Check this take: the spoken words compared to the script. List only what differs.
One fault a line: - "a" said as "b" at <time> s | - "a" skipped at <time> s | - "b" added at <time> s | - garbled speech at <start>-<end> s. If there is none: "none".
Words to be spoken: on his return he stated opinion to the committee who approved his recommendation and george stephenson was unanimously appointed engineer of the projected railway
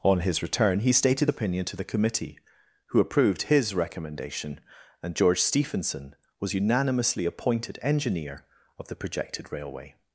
none